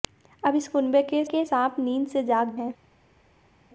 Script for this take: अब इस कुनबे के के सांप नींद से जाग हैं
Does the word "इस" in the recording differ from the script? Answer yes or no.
no